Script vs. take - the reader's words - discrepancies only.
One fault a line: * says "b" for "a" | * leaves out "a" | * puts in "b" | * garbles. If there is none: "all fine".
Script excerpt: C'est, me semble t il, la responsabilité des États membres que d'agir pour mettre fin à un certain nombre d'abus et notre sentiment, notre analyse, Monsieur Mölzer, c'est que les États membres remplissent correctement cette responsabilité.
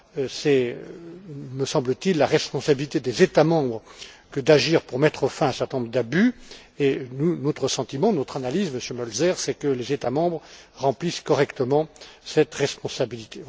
all fine